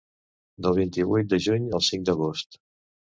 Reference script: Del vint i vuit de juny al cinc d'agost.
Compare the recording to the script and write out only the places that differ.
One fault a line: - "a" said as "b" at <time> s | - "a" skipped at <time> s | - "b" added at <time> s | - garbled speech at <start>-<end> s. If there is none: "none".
none